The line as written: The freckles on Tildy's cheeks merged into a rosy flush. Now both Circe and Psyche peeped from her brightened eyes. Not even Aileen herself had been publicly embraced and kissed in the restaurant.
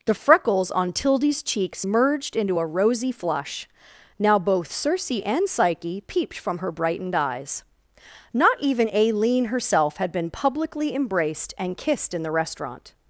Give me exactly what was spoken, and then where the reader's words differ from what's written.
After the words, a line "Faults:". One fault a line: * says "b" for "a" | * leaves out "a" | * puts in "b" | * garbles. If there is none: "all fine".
The freckles on Tildy's cheeks merged into a rosy flush. Now both Circe and Psyche peeped from her brightened eyes. Not even Aileen herself had been publicly embraced and kissed in the restaurant.
Faults:
all fine